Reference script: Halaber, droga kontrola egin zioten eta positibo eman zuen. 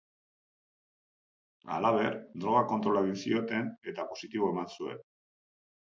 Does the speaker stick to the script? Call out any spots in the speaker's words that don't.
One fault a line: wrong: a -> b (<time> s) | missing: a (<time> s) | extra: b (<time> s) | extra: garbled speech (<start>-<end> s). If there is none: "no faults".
no faults